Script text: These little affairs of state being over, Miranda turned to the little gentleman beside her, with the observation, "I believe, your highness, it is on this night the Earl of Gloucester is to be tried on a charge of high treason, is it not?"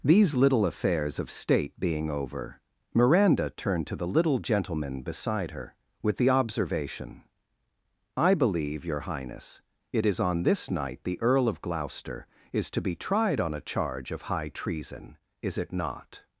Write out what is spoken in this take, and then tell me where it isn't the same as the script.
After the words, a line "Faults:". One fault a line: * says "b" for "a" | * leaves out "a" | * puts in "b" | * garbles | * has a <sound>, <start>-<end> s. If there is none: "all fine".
These little affairs of state being over, Miranda turned to the little gentleman beside her, with the observation, "I believe, your highness, it is on this night the Earl of Gloucester is to be tried on a charge of high treason, is it not?"
Faults:
all fine